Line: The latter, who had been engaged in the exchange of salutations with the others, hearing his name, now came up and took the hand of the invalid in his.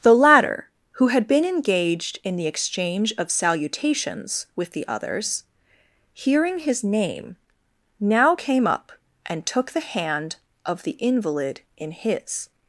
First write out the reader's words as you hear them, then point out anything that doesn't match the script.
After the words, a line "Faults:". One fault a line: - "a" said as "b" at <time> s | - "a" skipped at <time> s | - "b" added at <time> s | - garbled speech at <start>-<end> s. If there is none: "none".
The latter, who had been engaged in the exchange of salutations with the others, hearing his name, now came up and took the hand of the invalid in his.
Faults:
none